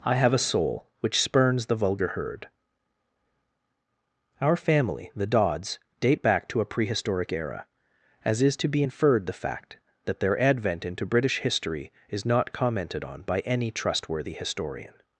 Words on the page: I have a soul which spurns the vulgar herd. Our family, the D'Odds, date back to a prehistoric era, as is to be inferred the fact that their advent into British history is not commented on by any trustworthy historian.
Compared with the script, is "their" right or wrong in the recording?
right